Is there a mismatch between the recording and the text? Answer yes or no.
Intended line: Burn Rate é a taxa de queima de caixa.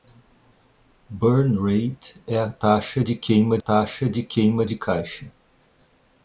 yes